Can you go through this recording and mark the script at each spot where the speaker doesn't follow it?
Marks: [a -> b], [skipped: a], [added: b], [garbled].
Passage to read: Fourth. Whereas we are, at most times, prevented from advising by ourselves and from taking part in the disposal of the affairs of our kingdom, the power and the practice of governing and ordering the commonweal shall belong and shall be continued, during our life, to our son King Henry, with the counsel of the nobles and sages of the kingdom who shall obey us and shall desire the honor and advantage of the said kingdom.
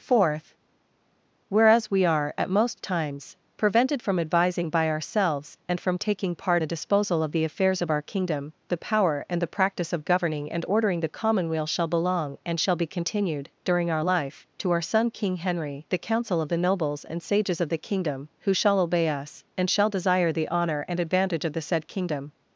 Fourth. Whereas we are, at most times, prevented from advising by ourselves and from taking part [skipped: in] the disposal of the affairs of our kingdom, the power and the practice of governing and ordering the commonweal shall belong and shall be continued, during our life, to our son King Henry, [skipped: with] the counsel of the nobles and sages of the kingdom who shall obey us and shall desire the honor and advantage of the said kingdom.